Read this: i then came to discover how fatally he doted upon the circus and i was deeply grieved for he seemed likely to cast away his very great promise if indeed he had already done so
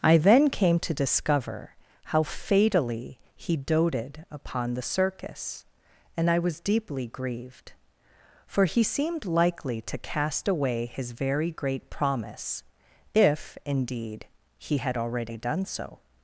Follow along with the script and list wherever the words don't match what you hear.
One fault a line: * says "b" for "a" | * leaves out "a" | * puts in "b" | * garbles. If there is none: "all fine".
all fine